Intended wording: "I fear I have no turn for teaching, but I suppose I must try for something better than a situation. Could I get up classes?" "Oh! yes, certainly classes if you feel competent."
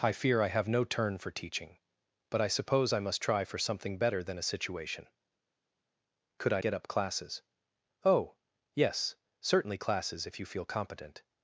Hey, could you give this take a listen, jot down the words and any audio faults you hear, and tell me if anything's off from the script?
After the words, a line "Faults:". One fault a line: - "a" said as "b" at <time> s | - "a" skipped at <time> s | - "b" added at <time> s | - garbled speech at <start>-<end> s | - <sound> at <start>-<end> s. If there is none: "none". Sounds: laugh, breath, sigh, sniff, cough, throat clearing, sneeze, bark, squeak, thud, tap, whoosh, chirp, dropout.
"I fear I have no turn for teaching, but I suppose I must try for something better than a situation. Could I get up classes?" "Oh! yes, certainly classes if you feel competent."
Faults:
none